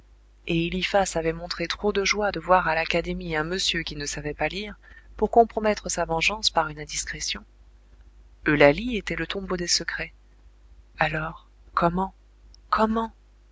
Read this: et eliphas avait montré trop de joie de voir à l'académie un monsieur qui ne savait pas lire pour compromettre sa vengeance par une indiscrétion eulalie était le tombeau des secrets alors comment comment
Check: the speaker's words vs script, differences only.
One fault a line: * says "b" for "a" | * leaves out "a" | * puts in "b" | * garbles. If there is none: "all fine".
all fine